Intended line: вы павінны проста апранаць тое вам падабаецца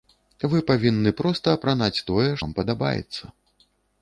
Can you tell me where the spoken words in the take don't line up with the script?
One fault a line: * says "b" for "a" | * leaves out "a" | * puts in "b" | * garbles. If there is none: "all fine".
all fine